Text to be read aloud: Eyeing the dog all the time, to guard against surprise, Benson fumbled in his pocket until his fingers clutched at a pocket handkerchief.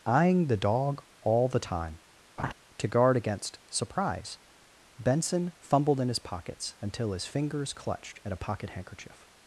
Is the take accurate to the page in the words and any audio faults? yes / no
no